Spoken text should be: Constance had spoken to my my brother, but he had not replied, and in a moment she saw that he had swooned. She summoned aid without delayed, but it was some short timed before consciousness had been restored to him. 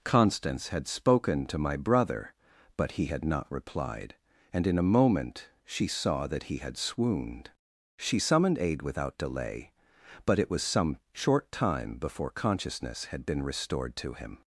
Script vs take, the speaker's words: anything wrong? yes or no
yes